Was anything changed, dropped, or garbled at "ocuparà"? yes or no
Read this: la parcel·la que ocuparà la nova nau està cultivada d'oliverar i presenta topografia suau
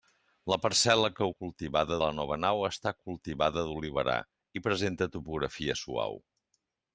yes